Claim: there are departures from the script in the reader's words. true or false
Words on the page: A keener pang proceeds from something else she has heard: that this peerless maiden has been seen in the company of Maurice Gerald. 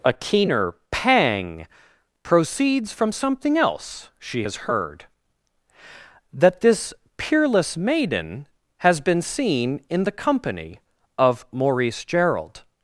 false